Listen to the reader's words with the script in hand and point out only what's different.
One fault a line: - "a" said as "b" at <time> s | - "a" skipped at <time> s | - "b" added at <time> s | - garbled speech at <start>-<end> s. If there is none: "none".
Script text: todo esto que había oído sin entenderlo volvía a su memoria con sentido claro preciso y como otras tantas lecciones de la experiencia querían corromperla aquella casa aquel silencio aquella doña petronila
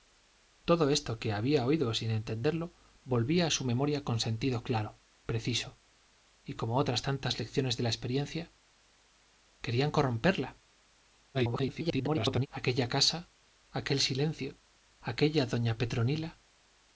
- garbled speech at 11.3-12.5 s